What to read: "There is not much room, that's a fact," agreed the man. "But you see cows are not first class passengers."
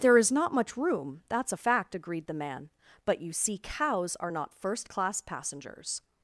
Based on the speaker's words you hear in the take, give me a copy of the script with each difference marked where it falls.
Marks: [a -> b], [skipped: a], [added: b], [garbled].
"There is not much room, that's a fact," agreed the man. "But you see cows are not first class passengers."